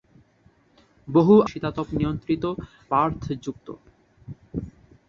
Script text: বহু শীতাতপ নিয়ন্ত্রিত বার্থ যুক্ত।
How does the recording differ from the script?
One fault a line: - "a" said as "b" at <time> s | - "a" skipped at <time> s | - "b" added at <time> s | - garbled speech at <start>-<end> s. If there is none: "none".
none